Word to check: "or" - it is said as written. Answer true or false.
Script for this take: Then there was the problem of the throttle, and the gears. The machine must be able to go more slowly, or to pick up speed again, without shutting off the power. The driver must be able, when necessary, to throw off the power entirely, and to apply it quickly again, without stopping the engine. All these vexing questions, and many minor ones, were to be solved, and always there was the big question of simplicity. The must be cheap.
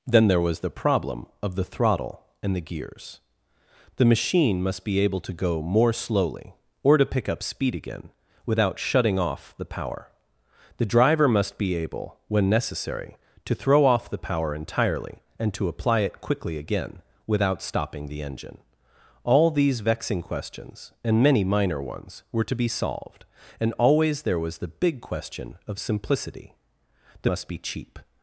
true